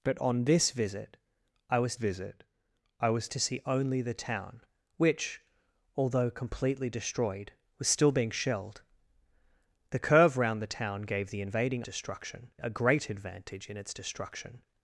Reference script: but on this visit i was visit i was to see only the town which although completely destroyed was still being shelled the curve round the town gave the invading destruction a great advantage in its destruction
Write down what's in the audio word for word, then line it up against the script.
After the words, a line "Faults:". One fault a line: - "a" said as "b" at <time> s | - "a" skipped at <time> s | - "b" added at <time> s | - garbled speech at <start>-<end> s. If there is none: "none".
but on this visit i was visit i was to see only the town which although completely destroyed was still being shelled the curve round the town gave the invading destruction a great advantage in its destruction
Faults:
none